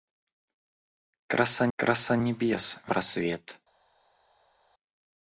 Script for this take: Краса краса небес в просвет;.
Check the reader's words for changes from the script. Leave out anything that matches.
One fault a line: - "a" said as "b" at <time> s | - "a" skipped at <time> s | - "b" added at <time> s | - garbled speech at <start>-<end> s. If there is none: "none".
none